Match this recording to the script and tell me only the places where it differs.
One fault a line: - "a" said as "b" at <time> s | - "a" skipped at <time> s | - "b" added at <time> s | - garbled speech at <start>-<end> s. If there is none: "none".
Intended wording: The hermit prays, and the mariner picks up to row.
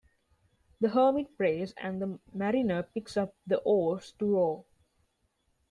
- "the oars" added at 3.4 s